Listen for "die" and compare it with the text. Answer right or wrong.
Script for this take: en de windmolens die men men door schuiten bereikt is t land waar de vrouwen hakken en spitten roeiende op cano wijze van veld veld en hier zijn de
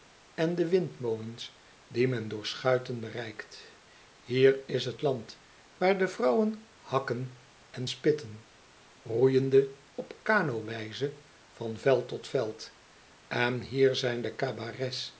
right